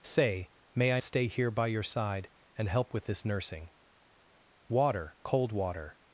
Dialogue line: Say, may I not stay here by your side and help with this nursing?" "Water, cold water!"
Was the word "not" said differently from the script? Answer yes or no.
yes